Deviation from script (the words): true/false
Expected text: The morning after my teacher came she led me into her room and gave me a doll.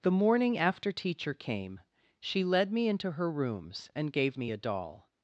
true